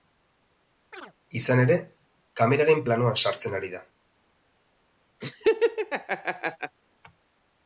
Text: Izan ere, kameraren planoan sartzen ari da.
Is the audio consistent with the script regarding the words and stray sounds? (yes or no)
no